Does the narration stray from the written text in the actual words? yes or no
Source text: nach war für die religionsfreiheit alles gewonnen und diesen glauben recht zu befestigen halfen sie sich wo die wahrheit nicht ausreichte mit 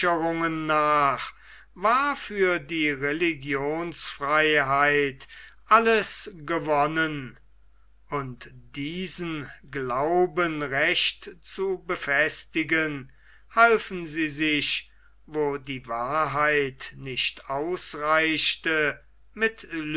no